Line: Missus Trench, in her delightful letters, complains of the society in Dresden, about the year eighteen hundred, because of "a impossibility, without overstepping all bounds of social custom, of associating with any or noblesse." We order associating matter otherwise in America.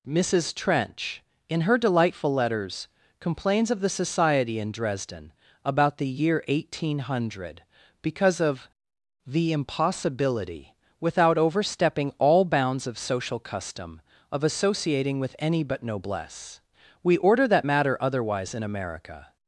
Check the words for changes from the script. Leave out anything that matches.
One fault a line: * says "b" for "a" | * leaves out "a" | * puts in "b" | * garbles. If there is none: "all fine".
* says "the" for "a"
* says "but" for "or"
* says "that" for "associating"